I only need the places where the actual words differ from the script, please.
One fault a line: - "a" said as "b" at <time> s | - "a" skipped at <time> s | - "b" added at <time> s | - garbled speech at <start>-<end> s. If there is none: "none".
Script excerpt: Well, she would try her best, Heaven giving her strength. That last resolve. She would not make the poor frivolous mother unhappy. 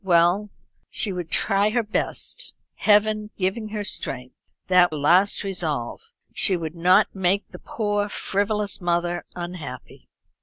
none